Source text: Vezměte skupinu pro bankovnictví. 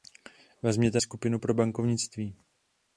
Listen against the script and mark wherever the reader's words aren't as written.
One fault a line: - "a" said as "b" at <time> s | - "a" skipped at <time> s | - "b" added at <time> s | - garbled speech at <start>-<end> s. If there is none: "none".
none